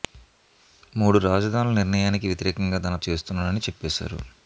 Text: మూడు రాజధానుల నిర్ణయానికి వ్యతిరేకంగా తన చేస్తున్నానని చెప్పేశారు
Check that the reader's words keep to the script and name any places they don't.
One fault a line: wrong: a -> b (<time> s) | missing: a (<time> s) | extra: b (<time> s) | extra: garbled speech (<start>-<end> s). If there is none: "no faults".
no faults